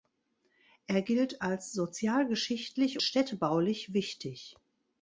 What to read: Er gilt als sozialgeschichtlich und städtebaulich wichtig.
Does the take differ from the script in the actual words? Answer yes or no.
yes